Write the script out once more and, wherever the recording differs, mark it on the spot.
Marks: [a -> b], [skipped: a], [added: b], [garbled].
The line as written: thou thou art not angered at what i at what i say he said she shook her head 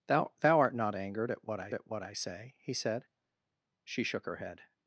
thou thou art not angered at what i at what i say he said she shook her head